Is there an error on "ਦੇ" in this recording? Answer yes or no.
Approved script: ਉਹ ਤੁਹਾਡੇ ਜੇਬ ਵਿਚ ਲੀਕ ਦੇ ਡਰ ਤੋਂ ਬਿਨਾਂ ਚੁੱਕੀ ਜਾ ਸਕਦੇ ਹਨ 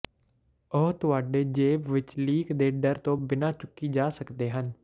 no